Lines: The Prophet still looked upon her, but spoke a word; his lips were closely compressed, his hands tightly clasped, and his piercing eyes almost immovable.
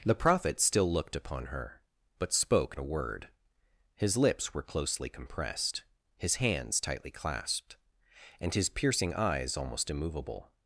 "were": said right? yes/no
yes